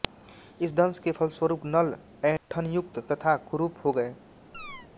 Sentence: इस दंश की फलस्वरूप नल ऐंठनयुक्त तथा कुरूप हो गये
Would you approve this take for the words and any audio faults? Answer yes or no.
no